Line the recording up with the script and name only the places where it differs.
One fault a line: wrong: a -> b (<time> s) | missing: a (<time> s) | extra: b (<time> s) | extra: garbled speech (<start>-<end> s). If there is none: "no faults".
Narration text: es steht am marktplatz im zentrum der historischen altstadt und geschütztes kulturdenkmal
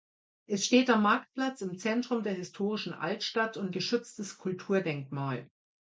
no faults